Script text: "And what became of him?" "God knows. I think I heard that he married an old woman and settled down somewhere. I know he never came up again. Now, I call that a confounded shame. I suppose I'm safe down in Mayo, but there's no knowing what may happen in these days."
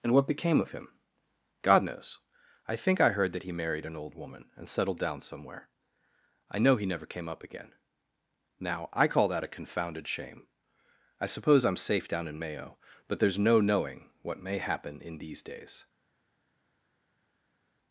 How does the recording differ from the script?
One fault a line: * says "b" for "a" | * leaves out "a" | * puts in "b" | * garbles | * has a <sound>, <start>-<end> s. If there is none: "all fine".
all fine